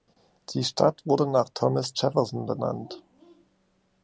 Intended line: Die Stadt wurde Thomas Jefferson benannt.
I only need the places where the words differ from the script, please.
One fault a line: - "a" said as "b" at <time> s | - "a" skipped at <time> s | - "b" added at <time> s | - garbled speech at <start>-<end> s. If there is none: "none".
- "nach" added at 1.3 s